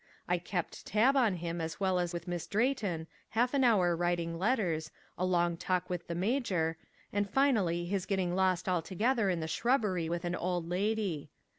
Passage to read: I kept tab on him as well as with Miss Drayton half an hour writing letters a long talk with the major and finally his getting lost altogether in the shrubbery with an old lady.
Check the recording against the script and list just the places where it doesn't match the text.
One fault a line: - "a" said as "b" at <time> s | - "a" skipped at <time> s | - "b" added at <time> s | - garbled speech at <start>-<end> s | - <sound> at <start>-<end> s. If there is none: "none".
none